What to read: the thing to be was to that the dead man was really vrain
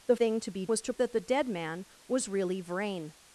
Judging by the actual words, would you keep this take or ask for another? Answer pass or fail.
pass